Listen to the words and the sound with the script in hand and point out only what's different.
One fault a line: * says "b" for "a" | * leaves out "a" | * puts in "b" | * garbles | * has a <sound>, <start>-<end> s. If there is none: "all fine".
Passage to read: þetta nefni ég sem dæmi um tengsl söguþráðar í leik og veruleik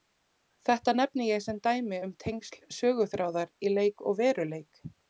all fine